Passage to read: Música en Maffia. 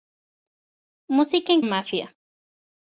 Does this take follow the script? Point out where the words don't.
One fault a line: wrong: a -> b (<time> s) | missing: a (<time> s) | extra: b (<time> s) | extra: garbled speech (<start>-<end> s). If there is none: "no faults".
no faults